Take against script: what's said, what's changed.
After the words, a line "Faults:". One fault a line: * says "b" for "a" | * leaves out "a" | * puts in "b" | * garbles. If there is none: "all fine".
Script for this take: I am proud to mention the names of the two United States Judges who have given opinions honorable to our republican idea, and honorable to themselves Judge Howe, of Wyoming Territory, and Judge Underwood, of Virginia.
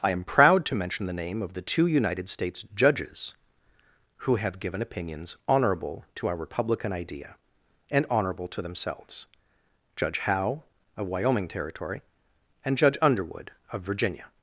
I am proud to mention the name of the two United States Judges who have given opinions honorable to our republican idea, and honorable to themselves Judge Howe, of Wyoming Territory, and Judge Underwood, of Virginia.
Faults:
* says "name" for "names"